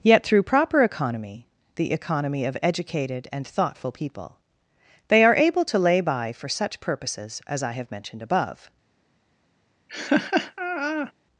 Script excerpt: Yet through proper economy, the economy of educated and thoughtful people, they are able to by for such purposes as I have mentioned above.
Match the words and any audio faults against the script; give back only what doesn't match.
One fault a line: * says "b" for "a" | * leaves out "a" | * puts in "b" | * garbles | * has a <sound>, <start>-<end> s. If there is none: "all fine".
* puts in "lay"
* has a laugh, 9.9-11.1 s